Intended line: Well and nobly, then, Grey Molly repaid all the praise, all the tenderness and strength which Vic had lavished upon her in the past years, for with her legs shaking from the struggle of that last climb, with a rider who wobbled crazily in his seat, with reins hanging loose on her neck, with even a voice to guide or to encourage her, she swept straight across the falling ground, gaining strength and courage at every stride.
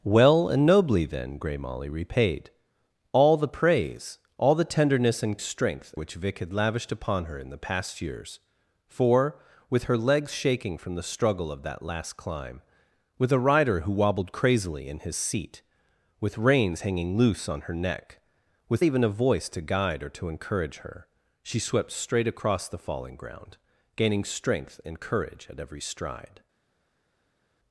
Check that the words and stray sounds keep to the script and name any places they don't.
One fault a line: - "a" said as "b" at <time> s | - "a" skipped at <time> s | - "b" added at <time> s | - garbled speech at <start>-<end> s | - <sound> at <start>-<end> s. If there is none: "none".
none